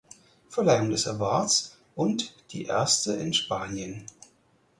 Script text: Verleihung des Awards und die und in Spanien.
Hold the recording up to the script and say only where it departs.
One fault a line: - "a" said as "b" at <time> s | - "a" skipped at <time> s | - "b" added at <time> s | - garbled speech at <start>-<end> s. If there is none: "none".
- "und" said as "erste" at 2.6 s